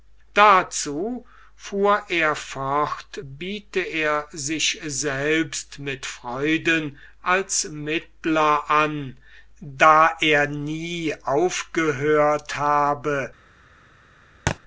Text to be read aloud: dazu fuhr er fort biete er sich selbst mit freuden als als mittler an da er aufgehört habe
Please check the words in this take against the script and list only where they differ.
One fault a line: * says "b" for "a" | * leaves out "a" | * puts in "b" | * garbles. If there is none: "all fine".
* leaves out "als"
* puts in "nie"